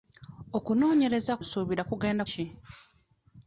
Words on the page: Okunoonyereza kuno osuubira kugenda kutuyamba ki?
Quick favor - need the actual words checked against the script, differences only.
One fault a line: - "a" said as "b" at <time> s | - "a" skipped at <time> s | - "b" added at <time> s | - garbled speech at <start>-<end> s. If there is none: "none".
- "kuno" skipped at 1.3 s
- "kutuyamba" skipped at 2.2 s